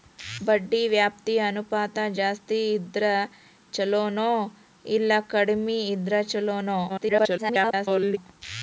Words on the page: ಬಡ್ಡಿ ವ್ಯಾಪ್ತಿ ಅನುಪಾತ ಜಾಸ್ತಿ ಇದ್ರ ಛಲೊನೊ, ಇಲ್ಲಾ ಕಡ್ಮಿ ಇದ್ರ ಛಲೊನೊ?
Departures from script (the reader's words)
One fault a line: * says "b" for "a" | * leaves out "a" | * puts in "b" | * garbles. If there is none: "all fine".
* garbles